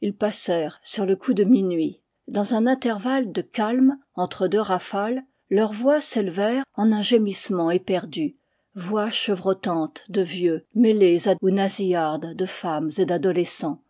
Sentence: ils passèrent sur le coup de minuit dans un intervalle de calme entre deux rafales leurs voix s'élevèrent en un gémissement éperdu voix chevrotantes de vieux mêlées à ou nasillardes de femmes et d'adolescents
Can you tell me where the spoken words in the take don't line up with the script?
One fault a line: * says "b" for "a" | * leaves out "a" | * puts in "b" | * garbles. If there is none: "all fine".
all fine